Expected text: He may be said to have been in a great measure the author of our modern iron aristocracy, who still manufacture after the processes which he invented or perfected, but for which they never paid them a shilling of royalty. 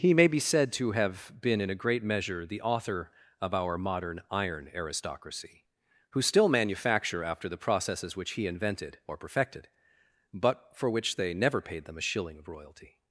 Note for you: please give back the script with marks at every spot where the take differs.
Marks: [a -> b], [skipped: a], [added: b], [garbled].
He may be said to have been in a great measure the author of our modern iron aristocracy, who still manufacture after the processes which he invented or perfected, but for which they never paid them a shilling of royalty.